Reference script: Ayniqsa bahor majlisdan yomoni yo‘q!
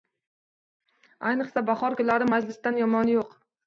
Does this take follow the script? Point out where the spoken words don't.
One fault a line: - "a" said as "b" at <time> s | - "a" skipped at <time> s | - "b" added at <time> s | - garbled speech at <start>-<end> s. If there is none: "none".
- "kunlari" added at 2.0 s